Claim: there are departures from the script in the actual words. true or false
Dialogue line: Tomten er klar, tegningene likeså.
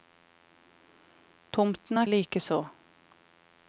true